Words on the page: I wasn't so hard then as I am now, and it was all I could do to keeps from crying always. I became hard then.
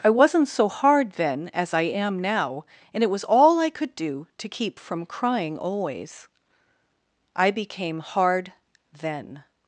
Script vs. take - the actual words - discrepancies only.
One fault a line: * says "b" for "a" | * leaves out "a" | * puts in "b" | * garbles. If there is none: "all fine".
* says "keep" for "keeps"